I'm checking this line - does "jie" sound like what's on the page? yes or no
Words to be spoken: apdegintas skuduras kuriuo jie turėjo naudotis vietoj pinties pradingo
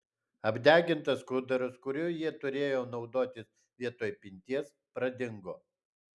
yes